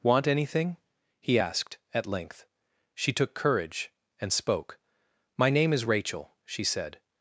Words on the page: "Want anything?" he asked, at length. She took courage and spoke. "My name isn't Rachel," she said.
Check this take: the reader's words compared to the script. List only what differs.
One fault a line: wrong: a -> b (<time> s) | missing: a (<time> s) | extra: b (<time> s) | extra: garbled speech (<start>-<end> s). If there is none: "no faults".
wrong: isn't -> is (5.7 s)